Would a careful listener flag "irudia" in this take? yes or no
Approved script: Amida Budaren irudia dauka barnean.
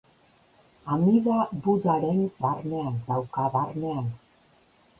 yes